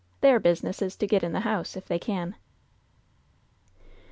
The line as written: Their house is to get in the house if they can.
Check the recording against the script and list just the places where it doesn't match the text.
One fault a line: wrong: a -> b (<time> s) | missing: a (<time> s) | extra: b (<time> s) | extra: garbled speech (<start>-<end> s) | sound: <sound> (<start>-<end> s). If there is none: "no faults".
wrong: house -> business (0.4 s)